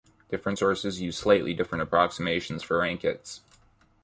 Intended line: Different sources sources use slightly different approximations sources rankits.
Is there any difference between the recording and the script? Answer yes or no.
yes